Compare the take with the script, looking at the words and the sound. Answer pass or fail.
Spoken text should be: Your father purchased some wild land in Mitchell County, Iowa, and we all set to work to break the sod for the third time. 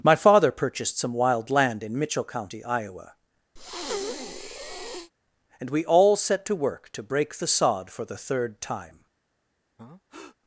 fail